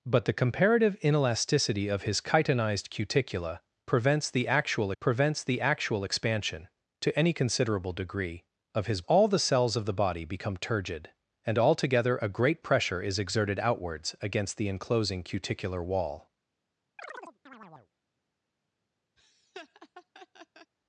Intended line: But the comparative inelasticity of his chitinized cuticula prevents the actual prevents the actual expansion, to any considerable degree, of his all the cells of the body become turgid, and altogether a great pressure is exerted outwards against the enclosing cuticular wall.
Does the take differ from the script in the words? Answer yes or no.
no